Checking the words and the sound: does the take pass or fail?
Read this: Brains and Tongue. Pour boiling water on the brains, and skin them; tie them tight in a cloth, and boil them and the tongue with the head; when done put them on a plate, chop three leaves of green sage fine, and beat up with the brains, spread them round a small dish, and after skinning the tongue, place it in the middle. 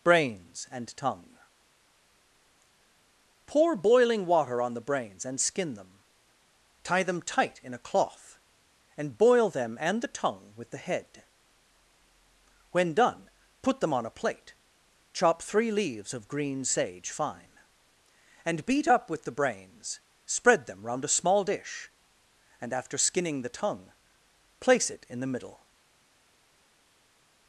pass